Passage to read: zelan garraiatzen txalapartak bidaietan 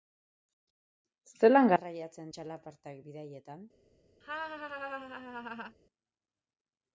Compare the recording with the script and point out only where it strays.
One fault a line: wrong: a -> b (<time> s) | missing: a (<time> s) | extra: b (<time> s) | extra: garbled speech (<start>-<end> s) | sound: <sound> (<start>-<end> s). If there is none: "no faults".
sound: laugh (4.2-5.8 s)